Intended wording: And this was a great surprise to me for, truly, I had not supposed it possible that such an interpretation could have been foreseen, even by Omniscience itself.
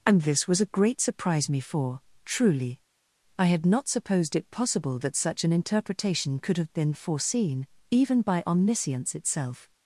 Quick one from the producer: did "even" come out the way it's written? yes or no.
yes